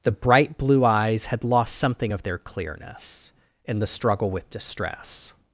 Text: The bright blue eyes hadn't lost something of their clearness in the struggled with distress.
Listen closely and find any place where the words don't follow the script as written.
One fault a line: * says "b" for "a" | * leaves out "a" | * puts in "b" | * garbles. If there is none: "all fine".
* says "had" for "hadn't"
* says "struggle" for "struggled"